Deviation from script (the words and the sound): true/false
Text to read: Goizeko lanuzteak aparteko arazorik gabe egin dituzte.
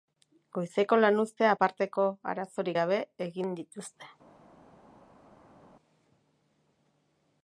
false